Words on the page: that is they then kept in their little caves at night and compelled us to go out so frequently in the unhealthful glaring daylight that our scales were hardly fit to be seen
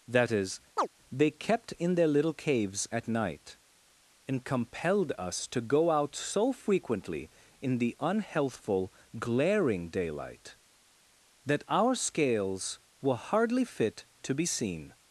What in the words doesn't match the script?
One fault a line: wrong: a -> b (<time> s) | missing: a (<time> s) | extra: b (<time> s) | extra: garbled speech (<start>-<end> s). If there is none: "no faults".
missing: then (1.3 s)